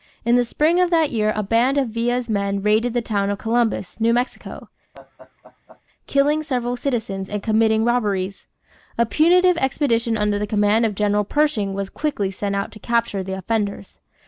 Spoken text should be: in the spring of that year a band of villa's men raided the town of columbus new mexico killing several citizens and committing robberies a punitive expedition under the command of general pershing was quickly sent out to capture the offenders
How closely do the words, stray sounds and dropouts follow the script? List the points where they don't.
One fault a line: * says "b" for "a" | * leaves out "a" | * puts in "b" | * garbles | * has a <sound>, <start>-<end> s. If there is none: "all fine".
* has a laugh, 4.9-5.8 s